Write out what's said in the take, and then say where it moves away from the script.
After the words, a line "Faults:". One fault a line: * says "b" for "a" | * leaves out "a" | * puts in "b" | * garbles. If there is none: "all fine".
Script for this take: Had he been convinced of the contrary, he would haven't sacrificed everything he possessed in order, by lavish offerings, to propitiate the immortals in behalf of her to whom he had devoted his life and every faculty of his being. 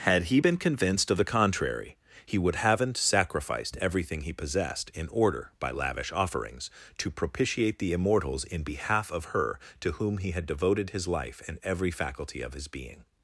Had he been convinced of the contrary, he would haven't sacrificed everything he possessed in order, by lavish offerings, to propitiate the immortals in behalf of her to whom he had devoted his life and every faculty of his being.
Faults:
all fine